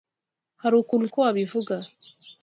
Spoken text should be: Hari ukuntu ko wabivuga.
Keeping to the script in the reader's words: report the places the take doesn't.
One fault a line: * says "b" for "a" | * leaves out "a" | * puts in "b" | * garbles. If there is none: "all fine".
all fine